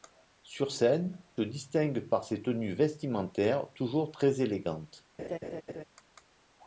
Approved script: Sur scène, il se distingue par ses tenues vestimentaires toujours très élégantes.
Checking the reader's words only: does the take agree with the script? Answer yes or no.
no